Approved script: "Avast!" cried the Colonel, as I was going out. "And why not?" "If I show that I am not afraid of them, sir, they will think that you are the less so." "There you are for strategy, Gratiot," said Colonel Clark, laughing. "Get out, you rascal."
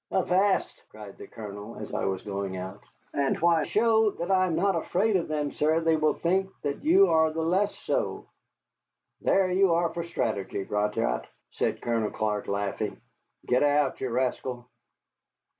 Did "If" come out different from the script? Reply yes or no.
yes